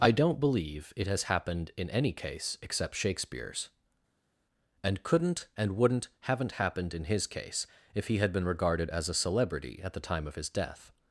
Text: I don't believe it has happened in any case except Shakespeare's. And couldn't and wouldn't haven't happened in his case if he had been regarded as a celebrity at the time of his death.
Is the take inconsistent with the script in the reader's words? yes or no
no